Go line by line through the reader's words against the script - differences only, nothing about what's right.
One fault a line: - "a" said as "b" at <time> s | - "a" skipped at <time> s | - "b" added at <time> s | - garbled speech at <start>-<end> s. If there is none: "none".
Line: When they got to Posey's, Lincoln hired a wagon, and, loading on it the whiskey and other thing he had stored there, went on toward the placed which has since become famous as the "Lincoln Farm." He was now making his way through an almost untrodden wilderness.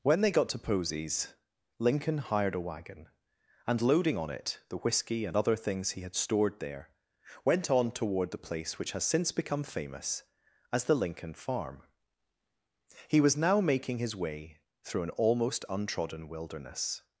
- "thing" said as "things" at 5.5 s
- "placed" said as "place" at 8.4 s